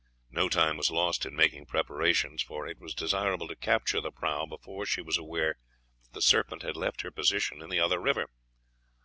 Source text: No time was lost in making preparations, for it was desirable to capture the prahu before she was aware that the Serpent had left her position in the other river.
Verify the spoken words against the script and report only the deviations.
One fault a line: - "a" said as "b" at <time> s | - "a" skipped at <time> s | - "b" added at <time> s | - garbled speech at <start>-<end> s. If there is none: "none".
none